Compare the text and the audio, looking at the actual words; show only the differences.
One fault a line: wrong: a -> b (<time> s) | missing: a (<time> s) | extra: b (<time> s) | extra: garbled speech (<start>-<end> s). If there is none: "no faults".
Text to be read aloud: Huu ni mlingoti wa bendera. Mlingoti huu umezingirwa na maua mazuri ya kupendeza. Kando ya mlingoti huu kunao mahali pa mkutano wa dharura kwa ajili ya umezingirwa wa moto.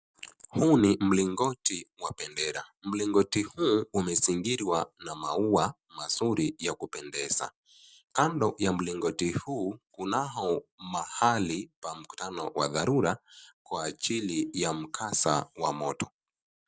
wrong: umezingirwa -> mkasa (14.7 s)